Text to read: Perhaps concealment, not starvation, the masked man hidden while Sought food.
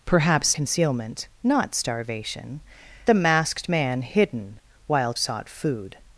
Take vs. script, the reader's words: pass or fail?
pass